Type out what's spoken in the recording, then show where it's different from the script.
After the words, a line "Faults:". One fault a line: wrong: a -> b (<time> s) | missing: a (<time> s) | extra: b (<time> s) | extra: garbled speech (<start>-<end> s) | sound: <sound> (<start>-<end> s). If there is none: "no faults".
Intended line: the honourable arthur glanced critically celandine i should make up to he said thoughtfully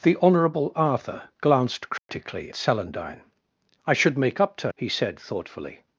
the honourable arthur glanced critically celandine i should make up to he said thoughtfully
Faults:
sound: dropout (2.0-2.1 s)